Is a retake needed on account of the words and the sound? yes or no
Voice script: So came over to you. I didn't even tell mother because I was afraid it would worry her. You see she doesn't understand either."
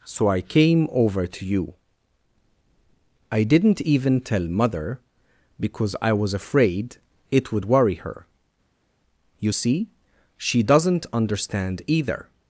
yes